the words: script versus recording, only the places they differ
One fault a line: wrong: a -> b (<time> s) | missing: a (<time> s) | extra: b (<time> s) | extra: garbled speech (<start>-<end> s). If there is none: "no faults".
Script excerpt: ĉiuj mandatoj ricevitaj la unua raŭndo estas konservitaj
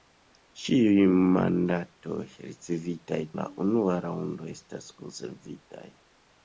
no faults